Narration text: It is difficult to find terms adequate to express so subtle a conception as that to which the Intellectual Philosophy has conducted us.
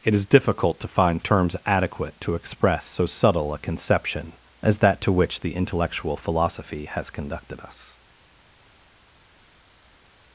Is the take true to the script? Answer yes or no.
yes